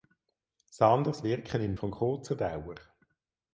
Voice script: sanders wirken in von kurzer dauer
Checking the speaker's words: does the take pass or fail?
pass